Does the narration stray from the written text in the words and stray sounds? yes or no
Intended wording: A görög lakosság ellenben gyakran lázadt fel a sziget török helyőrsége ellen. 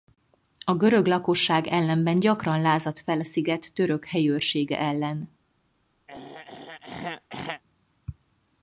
yes